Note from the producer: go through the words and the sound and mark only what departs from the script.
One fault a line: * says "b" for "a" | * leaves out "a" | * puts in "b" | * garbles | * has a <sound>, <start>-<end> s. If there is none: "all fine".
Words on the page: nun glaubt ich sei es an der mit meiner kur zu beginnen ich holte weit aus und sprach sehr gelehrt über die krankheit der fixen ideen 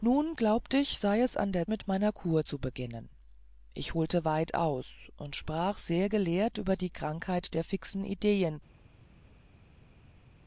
all fine